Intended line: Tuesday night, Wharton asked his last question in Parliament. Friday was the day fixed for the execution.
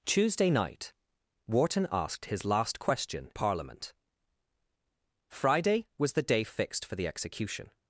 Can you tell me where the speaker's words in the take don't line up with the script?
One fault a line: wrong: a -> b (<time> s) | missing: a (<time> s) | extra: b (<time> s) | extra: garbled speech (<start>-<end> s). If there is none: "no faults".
missing: in (3.3 s)